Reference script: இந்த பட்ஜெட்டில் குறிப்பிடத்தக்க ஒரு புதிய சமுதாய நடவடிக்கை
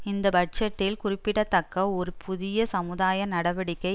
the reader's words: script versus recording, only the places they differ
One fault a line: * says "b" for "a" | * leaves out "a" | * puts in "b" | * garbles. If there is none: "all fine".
all fine